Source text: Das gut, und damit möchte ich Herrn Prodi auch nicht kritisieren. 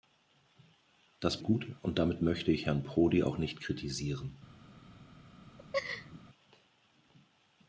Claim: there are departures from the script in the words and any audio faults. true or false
true